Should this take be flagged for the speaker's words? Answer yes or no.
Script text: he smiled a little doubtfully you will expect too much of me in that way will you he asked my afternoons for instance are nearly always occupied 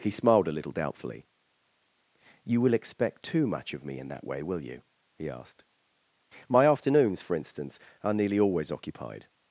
no